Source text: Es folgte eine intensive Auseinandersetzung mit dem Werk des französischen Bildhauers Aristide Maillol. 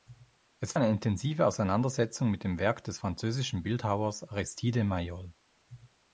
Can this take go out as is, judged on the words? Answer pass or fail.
fail